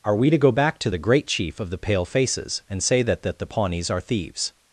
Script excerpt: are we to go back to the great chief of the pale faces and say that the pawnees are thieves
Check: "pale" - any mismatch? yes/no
no